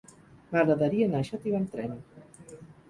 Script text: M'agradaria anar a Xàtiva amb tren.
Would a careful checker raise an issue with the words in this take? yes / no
no